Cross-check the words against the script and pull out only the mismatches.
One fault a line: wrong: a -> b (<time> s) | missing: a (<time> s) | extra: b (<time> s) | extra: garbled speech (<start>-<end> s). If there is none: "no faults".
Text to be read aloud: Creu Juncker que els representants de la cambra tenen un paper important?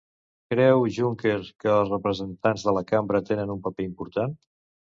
no faults